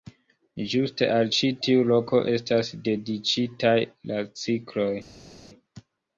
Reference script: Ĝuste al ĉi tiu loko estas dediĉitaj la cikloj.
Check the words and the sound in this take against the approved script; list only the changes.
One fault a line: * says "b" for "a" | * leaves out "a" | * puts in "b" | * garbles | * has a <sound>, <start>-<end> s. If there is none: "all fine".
all fine